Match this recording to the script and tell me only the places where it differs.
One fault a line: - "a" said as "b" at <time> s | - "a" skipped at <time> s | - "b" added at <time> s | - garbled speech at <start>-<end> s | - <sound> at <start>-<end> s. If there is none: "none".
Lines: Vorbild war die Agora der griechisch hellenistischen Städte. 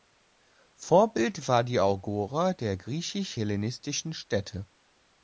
none